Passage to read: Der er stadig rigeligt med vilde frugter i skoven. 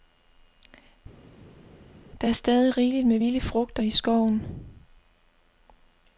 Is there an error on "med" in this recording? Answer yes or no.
no